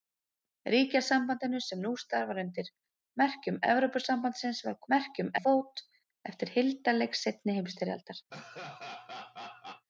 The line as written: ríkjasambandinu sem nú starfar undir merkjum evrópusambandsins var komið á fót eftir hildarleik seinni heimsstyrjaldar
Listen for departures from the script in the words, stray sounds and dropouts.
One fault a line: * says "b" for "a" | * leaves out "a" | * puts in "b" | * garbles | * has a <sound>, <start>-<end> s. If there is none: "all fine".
* says "merkjum" for "komið"
* has a laugh, 8.3-9.9 s